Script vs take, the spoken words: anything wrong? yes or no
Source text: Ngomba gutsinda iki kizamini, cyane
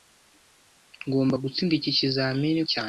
no